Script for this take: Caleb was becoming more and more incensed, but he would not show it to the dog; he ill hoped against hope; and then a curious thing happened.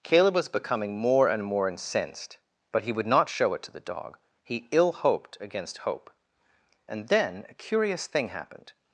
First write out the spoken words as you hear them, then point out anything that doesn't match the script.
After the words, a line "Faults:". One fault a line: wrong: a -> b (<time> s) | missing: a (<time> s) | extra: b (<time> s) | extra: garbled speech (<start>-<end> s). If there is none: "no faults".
Caleb was becoming more and more incensed, but he would not show it to the dog; he ill hoped against hope; and then a curious thing happened.
Faults:
no faults